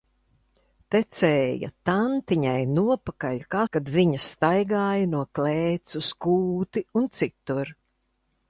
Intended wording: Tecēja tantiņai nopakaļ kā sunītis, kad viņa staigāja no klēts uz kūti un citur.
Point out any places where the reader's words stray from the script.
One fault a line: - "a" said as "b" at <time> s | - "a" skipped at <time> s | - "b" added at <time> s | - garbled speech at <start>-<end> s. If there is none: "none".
- "sunītis" skipped at 3.6 s